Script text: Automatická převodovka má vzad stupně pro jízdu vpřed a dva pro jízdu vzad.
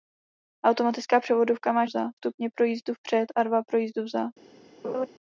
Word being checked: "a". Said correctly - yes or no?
yes